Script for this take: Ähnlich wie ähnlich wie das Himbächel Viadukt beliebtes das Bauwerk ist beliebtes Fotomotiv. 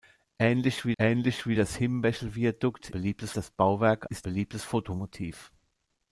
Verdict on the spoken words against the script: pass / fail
pass